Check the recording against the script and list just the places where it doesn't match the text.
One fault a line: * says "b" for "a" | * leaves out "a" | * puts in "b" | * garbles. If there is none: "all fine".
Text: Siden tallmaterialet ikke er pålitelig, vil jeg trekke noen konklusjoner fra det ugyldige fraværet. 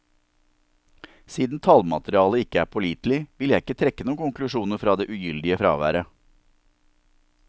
* puts in "ikke"